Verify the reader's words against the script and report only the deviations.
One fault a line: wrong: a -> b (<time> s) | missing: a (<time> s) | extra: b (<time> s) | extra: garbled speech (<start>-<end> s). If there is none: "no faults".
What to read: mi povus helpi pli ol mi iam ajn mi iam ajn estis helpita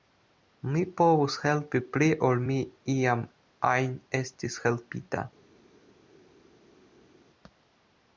missing: mi iam ajn (3.9 s)